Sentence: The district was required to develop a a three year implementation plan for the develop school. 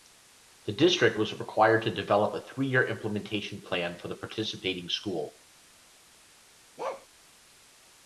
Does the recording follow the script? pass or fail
fail